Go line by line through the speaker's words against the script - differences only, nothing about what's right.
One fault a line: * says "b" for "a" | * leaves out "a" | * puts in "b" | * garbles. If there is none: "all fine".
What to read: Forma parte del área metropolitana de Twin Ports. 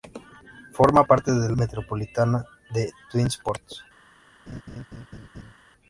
* leaves out "área"